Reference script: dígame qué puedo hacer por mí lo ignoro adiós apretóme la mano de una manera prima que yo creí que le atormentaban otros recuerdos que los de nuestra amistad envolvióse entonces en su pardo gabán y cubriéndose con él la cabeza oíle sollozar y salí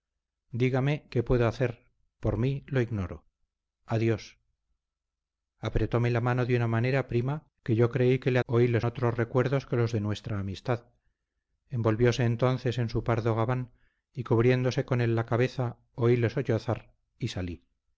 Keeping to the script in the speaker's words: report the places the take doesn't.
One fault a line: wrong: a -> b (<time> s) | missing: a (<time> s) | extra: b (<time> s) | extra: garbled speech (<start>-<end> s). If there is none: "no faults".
wrong: atormentaban -> oíle (8.4 s)